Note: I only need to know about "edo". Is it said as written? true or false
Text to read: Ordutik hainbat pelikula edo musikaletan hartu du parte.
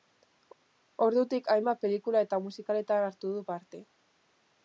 false